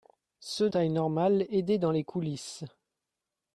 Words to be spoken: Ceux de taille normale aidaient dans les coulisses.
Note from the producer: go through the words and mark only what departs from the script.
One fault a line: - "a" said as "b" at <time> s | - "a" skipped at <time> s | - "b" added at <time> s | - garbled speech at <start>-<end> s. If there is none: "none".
- "de" skipped at 0.7 s